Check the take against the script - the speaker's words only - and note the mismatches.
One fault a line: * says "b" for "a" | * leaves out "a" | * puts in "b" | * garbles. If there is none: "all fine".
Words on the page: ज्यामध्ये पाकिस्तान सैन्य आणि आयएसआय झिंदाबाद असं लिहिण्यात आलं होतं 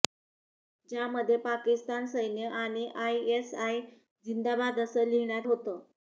* leaves out "आलं"